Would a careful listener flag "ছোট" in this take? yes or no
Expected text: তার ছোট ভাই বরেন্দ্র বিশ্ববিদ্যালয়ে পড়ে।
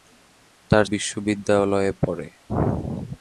yes